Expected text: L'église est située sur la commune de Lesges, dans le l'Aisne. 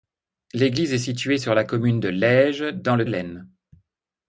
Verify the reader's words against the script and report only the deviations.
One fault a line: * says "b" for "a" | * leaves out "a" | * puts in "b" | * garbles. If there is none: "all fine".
all fine